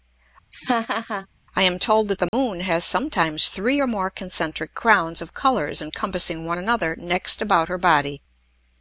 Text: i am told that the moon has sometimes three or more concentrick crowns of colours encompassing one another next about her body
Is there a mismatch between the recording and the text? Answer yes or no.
no